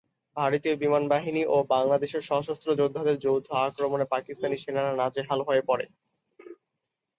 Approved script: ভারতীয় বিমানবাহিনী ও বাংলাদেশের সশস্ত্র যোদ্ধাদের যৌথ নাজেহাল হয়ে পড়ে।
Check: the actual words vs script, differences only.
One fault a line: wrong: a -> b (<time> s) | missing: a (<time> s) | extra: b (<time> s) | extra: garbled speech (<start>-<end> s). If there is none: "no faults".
extra: আক্রমণে পাকিস্তানি সেনারা (3.6 s)